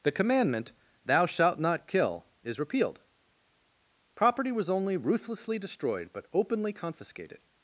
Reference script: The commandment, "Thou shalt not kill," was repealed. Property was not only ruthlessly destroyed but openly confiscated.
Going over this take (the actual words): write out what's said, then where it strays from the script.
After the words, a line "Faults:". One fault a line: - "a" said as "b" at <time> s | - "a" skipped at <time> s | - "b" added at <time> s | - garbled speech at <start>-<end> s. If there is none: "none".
The commandment, "Thou shalt not kill," is repealed. Property was only ruthlessly destroyed but openly confiscated.
Faults:
- "was" said as "is" at 2.4 s
- "not" skipped at 4.7 s